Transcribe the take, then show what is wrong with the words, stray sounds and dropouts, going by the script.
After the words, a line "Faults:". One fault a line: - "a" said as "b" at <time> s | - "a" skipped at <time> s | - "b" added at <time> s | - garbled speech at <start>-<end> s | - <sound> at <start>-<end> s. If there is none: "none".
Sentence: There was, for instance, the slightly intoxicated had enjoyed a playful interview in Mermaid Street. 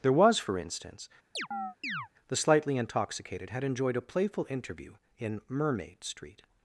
There was, for instance, the slightly intoxicated had enjoyed a playful interview in Mermaid Street.
Faults:
- chirp at 1.4-2.1 s